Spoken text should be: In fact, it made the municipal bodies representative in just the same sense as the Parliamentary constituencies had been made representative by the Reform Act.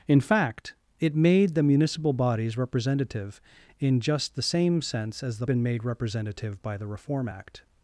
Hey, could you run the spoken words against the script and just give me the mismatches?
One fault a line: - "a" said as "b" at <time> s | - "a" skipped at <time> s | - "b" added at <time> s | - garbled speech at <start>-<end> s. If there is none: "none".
- "Parliamentary constituencies had" skipped at 5.5 s